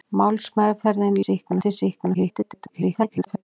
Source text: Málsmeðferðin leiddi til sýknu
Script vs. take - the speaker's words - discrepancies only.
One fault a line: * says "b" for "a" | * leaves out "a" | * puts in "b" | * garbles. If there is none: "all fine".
* says "sýknu" for "leiddi"
* garbles